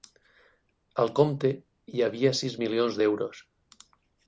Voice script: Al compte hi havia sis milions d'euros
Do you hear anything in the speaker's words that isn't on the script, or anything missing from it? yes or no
no